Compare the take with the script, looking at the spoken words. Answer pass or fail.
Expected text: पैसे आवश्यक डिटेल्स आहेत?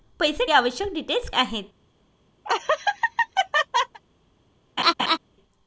pass